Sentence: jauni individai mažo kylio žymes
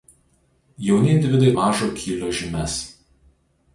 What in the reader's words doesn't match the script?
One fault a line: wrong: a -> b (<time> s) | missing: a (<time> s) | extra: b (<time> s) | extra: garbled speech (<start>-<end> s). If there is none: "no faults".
no faults